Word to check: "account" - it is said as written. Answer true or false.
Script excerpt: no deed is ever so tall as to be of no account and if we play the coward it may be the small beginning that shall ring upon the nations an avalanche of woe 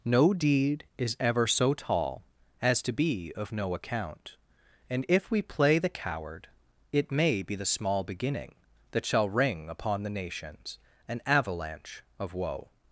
true